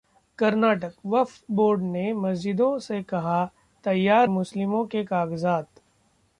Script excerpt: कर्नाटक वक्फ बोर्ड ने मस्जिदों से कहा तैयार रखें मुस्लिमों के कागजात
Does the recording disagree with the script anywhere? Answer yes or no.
yes